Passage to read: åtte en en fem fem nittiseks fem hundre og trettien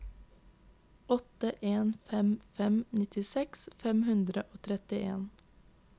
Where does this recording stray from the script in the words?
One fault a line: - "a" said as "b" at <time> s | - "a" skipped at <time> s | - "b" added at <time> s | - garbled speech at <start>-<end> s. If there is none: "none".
- "en" skipped at 1.9 s